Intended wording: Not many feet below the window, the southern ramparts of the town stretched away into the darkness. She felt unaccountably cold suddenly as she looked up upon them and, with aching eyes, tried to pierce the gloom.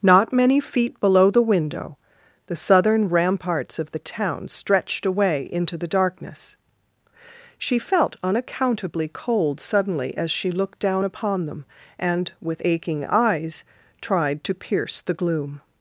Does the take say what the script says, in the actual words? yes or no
no